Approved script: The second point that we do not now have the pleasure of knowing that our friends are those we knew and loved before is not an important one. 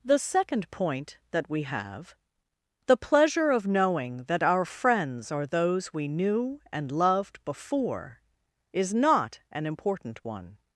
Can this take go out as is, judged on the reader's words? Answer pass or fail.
fail